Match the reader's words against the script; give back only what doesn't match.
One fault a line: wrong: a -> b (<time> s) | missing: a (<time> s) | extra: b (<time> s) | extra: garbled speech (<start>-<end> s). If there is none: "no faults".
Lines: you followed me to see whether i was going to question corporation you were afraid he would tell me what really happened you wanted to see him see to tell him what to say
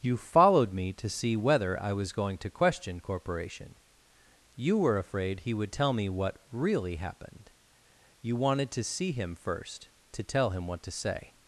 wrong: see -> first (9.3 s)